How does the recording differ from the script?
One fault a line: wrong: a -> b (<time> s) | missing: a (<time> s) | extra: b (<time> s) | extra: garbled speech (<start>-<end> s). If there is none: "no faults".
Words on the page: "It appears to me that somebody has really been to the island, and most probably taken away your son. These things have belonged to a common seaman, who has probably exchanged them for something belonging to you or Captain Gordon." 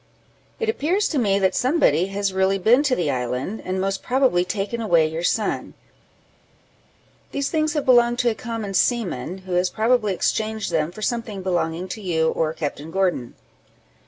no faults